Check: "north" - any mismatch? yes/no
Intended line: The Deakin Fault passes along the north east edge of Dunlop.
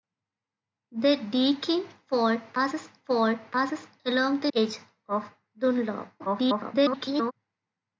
yes